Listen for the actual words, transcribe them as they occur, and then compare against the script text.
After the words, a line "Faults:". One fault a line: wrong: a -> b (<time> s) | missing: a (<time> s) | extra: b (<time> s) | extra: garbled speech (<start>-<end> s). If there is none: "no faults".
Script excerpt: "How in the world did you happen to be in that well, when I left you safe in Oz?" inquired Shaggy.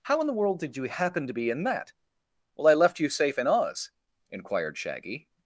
"How in the world did you happen to be in that well, I left you safe in Oz?" inquired Shaggy.
Faults:
missing: when (2.7 s)